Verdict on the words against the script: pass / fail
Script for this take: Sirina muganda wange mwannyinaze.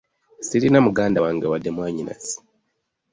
fail